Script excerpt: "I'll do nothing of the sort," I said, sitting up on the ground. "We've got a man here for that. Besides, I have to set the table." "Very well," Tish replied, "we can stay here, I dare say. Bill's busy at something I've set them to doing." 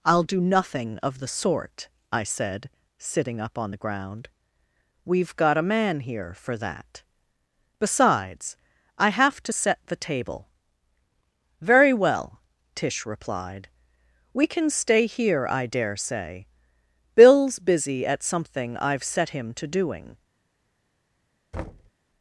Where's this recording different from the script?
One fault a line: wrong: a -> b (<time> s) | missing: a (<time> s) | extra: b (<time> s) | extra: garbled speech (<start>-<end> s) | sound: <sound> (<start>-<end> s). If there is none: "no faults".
wrong: them -> him (19.3 s)
sound: thud (21.5-21.9 s)